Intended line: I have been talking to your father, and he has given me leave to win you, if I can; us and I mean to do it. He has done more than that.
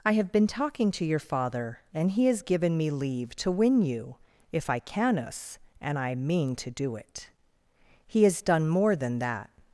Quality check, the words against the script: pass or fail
pass